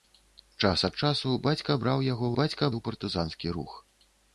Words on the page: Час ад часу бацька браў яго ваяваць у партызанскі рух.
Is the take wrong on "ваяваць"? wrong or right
wrong